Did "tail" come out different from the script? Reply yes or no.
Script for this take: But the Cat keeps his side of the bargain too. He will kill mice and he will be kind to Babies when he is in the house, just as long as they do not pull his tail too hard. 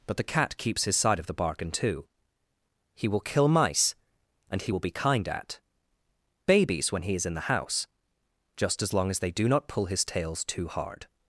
yes